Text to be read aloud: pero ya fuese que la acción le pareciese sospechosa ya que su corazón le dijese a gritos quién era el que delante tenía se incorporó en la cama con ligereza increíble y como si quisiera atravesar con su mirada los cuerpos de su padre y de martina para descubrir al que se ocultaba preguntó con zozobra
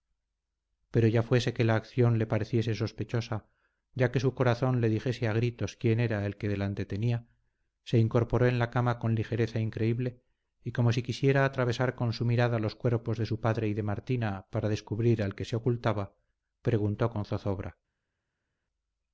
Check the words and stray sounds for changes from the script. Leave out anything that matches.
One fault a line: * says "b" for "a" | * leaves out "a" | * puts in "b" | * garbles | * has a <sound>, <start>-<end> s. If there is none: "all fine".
all fine